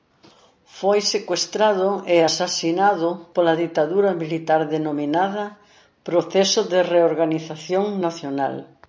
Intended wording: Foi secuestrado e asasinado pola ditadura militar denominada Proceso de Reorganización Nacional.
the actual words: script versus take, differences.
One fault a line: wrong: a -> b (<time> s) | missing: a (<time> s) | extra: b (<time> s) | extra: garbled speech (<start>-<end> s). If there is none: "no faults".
no faults